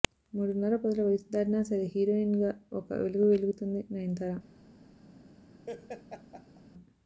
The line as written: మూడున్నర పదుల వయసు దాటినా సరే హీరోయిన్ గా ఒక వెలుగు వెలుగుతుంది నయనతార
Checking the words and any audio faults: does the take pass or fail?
fail